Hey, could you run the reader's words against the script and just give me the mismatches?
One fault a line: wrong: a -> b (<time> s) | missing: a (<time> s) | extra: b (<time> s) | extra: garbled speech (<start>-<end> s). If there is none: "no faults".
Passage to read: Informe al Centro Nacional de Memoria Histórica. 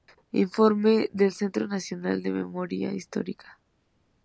wrong: al -> del (1.1 s)